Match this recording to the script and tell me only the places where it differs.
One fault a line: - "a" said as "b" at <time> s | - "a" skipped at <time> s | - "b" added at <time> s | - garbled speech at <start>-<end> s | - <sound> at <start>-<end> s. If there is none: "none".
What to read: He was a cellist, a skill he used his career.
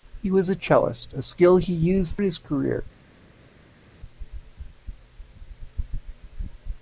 none